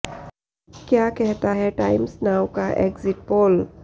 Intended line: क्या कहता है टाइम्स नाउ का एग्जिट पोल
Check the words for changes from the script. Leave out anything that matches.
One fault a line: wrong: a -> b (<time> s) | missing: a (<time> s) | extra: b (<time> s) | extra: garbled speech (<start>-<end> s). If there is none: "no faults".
no faults